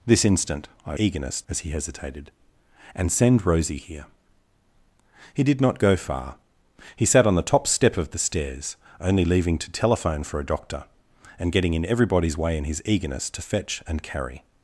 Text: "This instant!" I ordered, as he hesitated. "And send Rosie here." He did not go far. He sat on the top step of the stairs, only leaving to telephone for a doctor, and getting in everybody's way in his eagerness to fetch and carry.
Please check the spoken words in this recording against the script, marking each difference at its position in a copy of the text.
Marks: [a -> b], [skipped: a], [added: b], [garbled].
"This instant!" I [ordered, -> eagerness] as he hesitated. "And send Rosie here." He did not go far. He sat on the top step of the stairs, only leaving to telephone for a doctor, and getting in everybody's way in his eagerness to fetch and carry.